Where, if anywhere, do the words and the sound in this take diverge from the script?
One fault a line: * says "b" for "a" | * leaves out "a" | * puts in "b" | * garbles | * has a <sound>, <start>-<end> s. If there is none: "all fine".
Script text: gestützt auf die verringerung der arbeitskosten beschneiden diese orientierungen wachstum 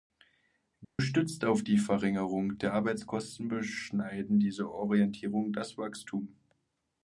* has a dropout, 0.8-1.0 s
* puts in "das"